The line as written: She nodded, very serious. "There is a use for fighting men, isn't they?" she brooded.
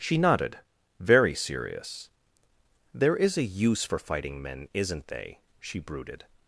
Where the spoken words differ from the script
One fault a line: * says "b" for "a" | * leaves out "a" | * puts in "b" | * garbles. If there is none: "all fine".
all fine